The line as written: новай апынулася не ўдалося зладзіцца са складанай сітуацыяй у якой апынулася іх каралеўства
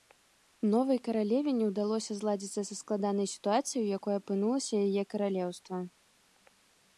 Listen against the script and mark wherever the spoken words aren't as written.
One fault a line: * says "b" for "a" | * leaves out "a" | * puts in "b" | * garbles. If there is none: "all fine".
* says "каралеве" for "апынулася"
* says "яе" for "іх"